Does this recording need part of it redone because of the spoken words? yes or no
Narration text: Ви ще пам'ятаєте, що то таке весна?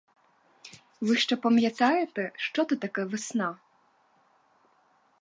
no